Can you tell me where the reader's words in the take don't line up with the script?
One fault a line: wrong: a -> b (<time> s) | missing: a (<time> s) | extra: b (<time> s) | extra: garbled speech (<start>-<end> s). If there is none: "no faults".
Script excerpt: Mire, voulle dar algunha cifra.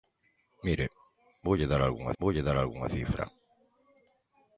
extra: voulle dar algunha (2.2 s)